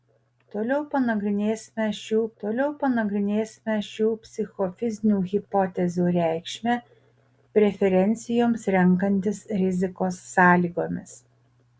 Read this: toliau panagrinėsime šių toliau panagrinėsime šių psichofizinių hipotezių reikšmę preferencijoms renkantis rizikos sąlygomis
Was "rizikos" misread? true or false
false